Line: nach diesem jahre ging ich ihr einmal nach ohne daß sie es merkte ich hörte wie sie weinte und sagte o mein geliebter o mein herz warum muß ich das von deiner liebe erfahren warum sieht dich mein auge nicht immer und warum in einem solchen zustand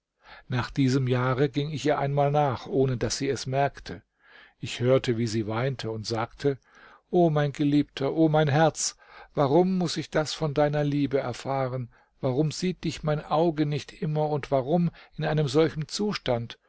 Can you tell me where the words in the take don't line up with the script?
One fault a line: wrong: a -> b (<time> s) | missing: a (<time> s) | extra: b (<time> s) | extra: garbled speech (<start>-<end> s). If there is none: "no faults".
no faults